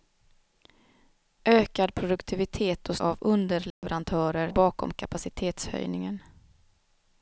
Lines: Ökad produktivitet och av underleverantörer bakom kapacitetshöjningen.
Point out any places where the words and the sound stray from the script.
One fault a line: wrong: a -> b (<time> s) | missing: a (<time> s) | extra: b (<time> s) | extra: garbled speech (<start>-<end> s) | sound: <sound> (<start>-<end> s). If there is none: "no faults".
sound: dropout (3.7-3.8 s)